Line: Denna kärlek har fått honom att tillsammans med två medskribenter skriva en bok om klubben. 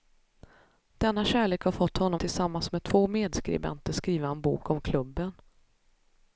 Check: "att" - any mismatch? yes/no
yes